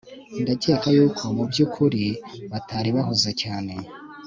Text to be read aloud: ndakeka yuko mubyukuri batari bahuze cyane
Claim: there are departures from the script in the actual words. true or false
false